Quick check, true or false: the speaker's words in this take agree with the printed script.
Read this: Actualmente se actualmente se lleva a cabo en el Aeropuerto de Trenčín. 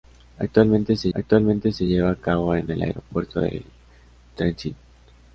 true